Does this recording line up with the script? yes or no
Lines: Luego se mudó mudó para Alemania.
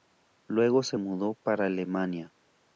no